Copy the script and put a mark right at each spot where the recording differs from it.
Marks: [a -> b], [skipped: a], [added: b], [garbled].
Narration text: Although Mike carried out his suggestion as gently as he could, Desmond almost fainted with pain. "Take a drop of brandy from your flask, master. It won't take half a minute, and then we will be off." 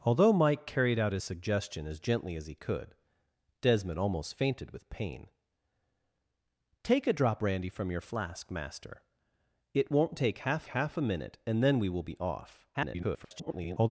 Although Mike carried out his suggestion as gently as he could, Desmond almost fainted with pain. "Take a drop [skipped: of] brandy from your flask, master. It won't take half [added: half] a minute, and then we will be off." [garbled]